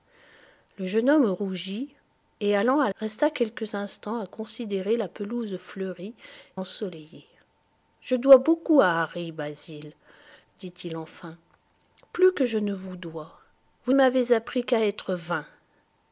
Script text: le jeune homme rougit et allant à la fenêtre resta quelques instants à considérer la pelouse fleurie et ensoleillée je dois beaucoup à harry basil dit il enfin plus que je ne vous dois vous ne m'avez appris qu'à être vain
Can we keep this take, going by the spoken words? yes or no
no